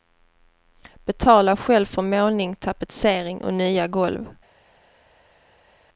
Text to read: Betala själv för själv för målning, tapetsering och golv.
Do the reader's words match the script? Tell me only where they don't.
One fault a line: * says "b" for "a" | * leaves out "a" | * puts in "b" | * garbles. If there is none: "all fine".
* leaves out "själv för"
* puts in "nya"